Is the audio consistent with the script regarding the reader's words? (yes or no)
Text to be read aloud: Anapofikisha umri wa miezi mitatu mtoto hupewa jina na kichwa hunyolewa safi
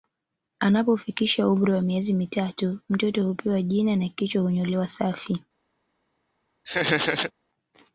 yes